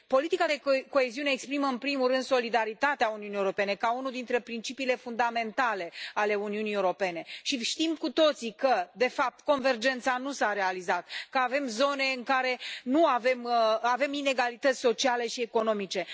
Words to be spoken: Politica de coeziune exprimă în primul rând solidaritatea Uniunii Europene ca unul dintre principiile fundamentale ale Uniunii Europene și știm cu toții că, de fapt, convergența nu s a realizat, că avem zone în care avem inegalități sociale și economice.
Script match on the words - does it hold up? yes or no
yes